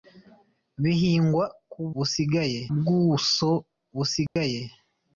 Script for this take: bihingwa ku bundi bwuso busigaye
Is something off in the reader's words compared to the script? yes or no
yes